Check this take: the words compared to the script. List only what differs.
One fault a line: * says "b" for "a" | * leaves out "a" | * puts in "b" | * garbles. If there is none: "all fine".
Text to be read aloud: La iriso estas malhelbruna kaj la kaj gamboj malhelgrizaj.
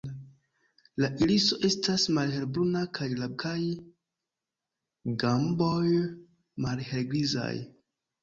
all fine